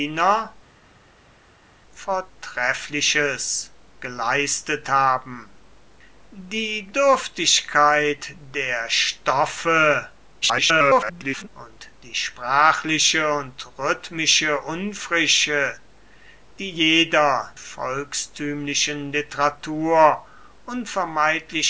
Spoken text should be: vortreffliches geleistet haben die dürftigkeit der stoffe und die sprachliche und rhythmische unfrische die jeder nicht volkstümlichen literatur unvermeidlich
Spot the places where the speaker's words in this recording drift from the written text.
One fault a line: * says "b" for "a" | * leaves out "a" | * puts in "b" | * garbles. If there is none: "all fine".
* garbles
* leaves out "nicht"